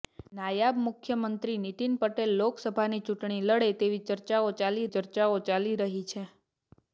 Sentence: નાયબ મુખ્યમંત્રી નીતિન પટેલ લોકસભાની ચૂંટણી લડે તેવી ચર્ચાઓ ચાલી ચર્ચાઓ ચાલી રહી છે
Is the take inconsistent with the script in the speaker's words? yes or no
no